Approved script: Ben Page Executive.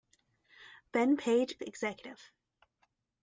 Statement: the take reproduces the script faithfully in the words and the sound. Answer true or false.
true